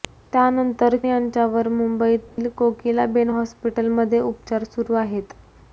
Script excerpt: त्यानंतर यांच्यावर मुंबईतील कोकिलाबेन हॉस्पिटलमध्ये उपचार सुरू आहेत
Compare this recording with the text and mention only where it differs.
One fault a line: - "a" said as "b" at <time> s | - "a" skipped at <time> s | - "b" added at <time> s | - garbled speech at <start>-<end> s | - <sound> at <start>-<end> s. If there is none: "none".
- dropout at 2.3-2.4 s